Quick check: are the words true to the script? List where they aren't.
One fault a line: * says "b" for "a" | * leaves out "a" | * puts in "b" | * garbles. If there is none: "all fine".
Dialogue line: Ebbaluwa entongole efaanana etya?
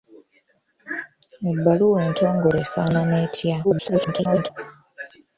* garbles